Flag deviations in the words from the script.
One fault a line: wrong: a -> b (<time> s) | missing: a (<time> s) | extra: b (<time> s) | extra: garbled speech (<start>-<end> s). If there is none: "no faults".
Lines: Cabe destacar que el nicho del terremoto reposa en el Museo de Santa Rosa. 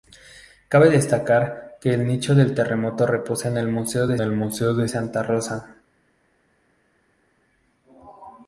extra: el Museo de (4.2 s)